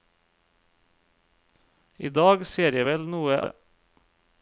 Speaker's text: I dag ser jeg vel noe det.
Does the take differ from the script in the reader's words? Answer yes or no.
no